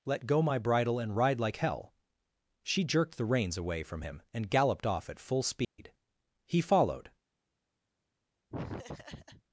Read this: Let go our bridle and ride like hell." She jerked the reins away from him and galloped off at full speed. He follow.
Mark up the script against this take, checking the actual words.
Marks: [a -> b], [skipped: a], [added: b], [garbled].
Let go [our -> my] bridle and ride like hell." She jerked the reins away from him and galloped off at full speed. He [follow. -> followed]